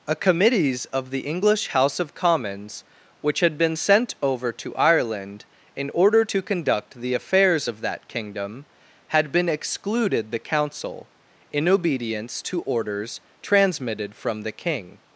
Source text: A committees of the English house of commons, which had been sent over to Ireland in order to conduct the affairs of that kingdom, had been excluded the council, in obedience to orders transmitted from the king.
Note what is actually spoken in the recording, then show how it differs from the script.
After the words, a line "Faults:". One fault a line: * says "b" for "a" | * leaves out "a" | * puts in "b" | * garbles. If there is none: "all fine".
A committees of the English house of commons, which had been sent over to Ireland in order to conduct the affairs of that kingdom, had been excluded the council, in obedience to orders transmitted from the king.
Faults:
all fine